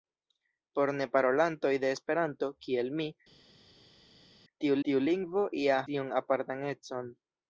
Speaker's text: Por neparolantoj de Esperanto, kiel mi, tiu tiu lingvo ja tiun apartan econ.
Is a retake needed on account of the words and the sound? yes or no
no